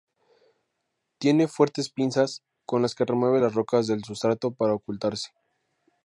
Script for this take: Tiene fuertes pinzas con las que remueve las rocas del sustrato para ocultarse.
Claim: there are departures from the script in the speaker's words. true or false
false